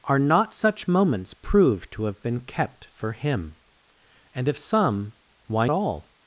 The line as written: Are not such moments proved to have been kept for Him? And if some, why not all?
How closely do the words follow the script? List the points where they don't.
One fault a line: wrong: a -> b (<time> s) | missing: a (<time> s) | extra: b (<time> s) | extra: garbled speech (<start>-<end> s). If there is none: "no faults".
missing: not (5.7 s)